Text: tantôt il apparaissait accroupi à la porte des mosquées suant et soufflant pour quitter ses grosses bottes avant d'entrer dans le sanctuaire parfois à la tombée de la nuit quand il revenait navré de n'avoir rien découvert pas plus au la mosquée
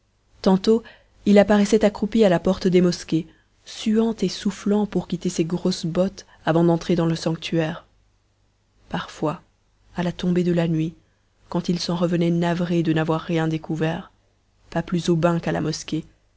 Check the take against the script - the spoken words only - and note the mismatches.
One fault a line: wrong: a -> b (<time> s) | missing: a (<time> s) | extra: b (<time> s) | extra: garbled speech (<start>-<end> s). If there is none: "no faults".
extra: s'en (11.8 s)
extra: bain qu'à (15.2 s)